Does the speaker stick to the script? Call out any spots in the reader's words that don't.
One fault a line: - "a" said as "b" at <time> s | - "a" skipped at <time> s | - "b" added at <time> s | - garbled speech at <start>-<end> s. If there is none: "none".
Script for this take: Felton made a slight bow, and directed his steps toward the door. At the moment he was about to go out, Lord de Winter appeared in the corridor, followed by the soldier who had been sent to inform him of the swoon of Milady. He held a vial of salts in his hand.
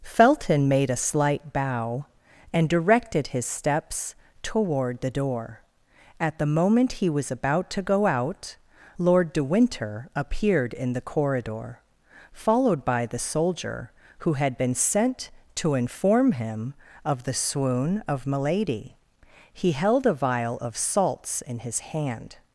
none